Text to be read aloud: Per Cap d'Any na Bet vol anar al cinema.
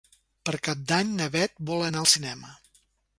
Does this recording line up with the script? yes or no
yes